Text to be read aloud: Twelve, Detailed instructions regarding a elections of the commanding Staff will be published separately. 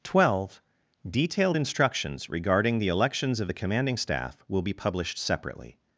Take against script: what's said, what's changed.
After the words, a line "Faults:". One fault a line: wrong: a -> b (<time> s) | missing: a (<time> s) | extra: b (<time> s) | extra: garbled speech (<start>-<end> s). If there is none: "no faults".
Twelve, Detailed instructions regarding the elections of the commanding Staff will be published separately.
Faults:
wrong: a -> the (2.8 s)